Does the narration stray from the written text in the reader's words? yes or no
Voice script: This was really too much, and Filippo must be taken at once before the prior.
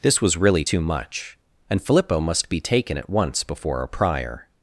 yes